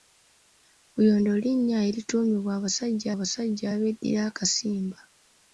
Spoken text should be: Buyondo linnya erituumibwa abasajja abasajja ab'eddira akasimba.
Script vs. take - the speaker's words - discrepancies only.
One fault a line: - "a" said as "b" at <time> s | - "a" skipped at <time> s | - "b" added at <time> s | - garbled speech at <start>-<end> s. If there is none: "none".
none